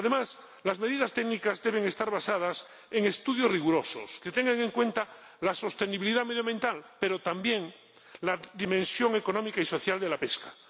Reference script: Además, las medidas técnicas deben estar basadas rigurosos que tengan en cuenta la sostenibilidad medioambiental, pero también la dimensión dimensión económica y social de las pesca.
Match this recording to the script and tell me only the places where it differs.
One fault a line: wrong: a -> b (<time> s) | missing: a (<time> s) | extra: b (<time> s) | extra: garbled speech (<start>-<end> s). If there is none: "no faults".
extra: en estudios (2.9 s)
missing: dimensión (9.2 s)
wrong: las -> la (10.1 s)